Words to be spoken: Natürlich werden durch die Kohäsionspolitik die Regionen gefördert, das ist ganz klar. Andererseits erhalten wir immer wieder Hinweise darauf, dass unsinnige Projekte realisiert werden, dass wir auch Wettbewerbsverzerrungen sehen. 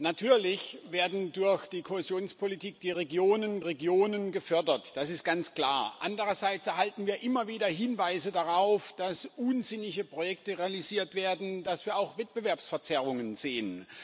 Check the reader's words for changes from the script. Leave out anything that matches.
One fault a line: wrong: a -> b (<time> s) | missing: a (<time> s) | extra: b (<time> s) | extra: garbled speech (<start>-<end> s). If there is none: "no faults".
extra: Regionen (3.6 s)